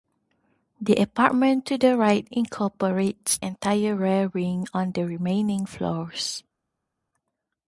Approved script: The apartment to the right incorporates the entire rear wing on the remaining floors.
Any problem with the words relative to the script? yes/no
yes